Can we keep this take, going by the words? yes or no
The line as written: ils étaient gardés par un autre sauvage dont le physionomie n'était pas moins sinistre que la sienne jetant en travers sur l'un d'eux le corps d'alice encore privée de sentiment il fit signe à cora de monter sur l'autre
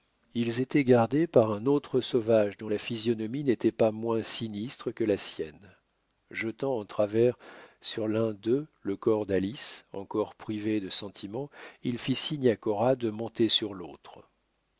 no